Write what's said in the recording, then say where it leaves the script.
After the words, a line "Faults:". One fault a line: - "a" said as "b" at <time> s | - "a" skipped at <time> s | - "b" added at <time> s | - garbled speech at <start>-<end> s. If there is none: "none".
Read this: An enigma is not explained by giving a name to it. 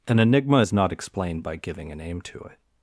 An enigma is not explained by giving a name to it.
Faults:
none